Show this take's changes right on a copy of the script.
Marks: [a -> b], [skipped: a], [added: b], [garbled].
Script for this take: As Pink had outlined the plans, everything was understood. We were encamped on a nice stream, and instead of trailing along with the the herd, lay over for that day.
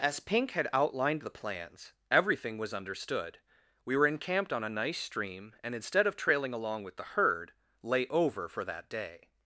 As Pink had outlined the plans, everything was understood. We were encamped on a nice stream, and instead of trailing along with the [skipped: the] herd, lay over for that day.